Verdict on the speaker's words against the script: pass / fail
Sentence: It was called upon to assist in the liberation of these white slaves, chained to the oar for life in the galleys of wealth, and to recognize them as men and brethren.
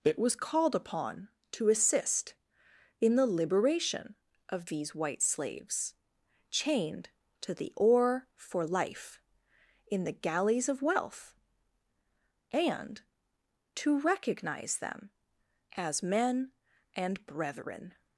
pass